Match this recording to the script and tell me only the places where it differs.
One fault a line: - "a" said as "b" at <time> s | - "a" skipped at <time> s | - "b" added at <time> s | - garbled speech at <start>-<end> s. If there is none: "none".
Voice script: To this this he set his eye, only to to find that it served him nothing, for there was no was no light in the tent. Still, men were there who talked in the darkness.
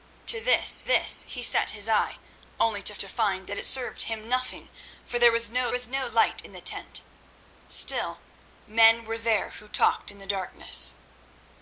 none